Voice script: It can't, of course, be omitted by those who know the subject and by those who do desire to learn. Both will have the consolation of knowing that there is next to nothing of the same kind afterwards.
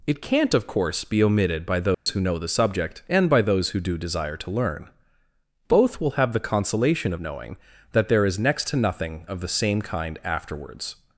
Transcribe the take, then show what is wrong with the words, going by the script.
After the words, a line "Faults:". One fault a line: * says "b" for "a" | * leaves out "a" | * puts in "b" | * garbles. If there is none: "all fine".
It can't, of course, be omitted by those who know the subject and by those who do desire to learn. Both will have the consolation of knowing that there is next to nothing of the same kind afterwards.
Faults:
all fine